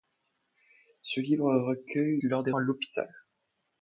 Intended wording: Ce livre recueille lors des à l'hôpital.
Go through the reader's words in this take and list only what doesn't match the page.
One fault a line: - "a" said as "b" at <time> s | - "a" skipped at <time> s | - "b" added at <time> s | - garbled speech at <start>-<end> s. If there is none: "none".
none